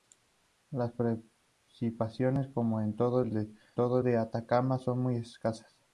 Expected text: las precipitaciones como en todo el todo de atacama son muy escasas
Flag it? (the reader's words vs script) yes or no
no